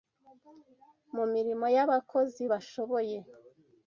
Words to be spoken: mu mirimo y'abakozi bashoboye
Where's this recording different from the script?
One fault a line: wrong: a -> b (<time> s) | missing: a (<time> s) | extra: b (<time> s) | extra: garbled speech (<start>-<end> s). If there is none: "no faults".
no faults